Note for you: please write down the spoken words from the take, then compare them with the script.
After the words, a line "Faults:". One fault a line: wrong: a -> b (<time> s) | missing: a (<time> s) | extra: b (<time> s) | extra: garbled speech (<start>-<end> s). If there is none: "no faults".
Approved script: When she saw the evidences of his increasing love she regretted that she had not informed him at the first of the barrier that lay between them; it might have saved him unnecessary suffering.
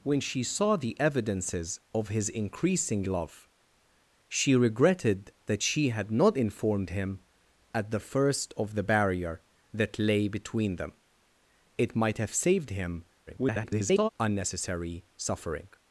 When she saw the evidences of his increasing love she regretted that she had not informed him at the first of the barrier that lay between them; it might have saved him [garbled] unnecessary suffering.
Faults:
extra: garbled speech (13.3-14.1 s)